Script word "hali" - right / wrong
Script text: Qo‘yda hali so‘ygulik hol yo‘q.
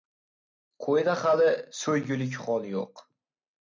right